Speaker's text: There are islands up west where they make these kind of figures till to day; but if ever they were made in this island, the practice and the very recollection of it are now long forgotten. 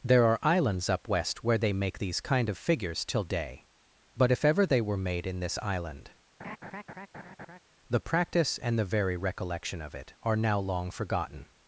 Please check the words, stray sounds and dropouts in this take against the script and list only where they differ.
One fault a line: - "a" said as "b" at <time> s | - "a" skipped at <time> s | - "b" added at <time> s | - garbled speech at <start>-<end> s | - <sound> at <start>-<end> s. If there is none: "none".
- "to" skipped at 3.2 s
- laugh at 6.4-7.6 s